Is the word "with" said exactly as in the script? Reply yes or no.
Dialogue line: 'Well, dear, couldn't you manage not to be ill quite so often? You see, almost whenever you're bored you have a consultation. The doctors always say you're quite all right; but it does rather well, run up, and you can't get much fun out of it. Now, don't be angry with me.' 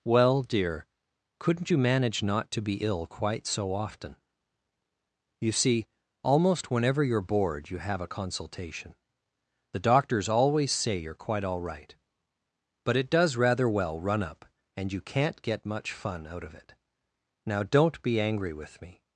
yes